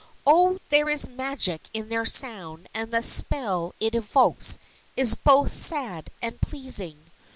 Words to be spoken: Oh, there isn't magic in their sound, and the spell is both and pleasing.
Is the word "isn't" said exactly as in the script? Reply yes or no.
no